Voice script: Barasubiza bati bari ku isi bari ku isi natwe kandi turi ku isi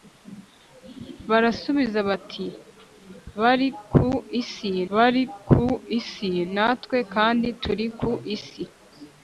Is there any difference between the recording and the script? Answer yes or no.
no